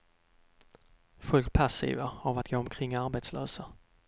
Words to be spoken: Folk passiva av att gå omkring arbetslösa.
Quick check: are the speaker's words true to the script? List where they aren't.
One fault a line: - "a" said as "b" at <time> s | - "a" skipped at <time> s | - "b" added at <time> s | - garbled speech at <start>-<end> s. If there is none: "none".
none